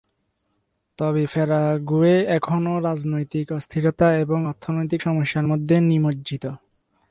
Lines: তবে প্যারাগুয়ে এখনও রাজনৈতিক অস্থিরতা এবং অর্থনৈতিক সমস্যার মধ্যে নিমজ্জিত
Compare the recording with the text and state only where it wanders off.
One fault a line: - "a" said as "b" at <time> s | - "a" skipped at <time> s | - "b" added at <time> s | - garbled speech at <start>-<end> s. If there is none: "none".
none